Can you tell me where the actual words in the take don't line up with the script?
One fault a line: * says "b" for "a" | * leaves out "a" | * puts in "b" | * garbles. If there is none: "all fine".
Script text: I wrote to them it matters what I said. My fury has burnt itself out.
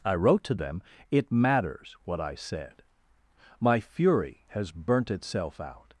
all fine